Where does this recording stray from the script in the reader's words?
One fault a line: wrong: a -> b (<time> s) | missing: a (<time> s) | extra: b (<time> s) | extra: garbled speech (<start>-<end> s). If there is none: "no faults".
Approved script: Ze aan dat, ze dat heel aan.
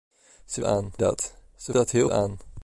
no faults